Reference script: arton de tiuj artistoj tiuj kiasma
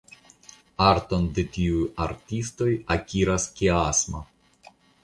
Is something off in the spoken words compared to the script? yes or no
yes